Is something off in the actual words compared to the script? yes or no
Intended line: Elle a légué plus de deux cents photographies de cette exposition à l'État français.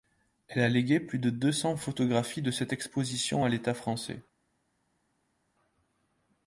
no